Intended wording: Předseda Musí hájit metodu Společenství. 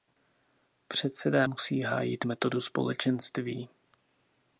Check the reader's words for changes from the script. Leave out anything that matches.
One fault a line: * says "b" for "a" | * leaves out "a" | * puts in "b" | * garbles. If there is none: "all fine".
all fine